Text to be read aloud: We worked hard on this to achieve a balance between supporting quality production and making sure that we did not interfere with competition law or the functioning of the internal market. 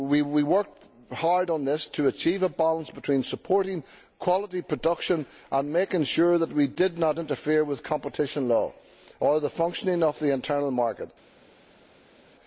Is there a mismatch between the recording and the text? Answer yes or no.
no